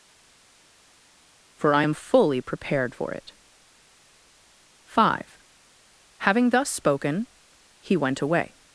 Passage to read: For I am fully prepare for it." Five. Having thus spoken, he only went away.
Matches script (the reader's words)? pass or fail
fail